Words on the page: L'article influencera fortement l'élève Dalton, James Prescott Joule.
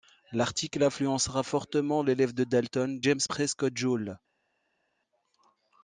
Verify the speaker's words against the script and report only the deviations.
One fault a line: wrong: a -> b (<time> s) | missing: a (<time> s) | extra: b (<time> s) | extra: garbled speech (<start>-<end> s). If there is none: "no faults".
extra: de (2.3 s)